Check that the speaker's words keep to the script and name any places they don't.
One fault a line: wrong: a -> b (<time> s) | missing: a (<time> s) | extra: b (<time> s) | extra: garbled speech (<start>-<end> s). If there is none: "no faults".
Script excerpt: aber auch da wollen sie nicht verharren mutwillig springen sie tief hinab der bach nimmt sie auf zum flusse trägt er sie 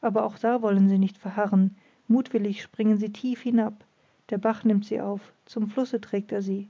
no faults